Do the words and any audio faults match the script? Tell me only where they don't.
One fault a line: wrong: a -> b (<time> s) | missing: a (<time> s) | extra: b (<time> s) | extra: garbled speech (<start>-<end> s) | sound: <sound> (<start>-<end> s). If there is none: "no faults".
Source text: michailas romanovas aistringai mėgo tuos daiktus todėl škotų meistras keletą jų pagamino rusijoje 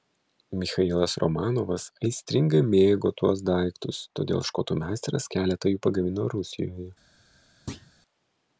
sound: thud (7.7-7.9 s)